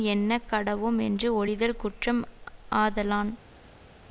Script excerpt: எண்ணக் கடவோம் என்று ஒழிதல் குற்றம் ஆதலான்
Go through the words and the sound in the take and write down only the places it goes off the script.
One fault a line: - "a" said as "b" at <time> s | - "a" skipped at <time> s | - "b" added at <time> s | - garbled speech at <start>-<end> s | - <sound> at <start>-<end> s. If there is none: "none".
none